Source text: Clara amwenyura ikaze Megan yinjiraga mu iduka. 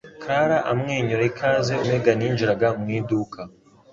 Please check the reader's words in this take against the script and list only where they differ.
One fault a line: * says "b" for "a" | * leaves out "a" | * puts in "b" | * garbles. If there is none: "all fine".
all fine